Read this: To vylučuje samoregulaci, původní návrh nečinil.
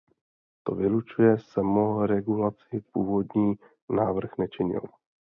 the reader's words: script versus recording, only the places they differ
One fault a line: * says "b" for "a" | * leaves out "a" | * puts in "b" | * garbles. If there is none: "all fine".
all fine